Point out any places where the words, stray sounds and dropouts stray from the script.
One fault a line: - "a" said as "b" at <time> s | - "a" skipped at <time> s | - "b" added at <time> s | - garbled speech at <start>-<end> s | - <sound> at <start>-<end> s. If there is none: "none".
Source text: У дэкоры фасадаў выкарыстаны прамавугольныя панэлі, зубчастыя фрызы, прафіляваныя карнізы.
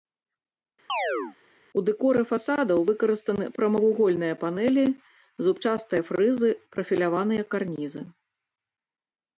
- chirp at 0.9-1.4 s